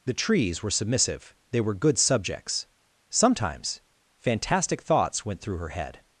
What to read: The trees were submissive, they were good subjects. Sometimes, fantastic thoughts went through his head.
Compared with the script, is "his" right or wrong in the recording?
wrong